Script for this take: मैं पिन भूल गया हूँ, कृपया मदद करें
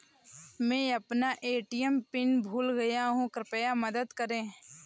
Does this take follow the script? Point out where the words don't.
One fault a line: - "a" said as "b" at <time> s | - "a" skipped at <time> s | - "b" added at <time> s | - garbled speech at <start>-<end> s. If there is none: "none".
- "अपना ए.टी.एम" added at 0.9 s